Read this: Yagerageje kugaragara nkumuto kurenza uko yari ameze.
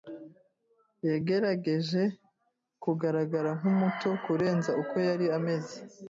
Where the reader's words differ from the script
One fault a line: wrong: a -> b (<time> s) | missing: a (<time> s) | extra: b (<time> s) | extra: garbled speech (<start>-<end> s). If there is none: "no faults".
no faults